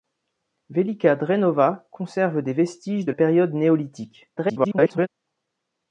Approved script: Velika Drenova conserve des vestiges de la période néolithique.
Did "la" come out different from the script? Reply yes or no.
yes